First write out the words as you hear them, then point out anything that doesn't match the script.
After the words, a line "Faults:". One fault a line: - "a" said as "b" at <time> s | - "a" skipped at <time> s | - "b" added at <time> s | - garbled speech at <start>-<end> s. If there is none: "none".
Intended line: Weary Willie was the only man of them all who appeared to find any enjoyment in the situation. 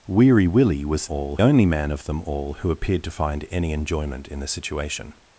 Weary Willie was all only man of them all who appeared to find any enjoyment in the situation.
Faults:
- "the" said as "all" at 1.0 s